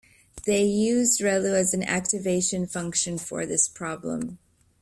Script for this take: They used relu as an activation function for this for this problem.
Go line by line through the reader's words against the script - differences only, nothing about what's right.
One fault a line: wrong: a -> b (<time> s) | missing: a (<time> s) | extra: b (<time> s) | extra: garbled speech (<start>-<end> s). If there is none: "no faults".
missing: for this (3.7 s)